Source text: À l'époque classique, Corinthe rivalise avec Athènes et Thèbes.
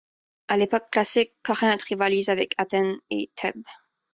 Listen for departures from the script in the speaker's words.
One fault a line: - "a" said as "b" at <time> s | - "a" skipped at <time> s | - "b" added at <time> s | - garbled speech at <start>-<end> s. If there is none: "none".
none